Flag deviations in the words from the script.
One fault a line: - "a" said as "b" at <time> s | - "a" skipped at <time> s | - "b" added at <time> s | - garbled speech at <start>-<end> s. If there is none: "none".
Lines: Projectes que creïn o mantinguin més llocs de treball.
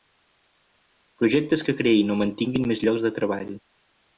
none